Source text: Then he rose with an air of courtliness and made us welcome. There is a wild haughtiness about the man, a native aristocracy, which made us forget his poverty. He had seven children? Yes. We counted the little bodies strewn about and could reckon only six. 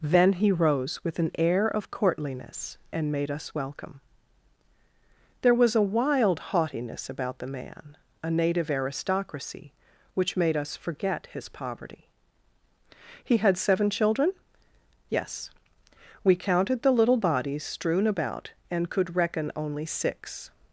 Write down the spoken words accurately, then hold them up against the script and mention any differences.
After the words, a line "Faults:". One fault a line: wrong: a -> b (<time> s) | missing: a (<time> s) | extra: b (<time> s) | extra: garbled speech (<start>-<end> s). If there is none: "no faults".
Then he rose with an air of courtliness and made us welcome. There was a wild haughtiness about the man, a native aristocracy, which made us forget his poverty. He had seven children? Yes. We counted the little bodies strewn about and could reckon only six.
Faults:
wrong: is -> was (5.5 s)